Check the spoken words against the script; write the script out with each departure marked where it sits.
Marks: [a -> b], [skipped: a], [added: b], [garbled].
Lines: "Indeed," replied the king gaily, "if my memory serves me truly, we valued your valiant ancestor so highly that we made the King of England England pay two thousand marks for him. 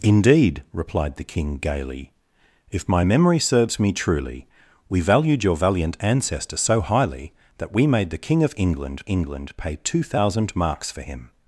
"Indeed," replied the king gaily, "if my memory serves me truly, we valued your valiant ancestor so highly that we made the King of England England pay two thousand marks for him.